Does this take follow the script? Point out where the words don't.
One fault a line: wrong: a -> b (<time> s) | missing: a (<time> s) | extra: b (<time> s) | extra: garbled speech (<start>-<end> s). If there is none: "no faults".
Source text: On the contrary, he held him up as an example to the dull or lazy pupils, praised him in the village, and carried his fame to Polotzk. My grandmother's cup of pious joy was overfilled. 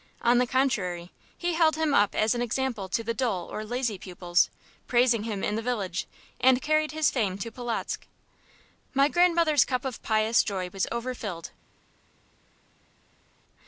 no faults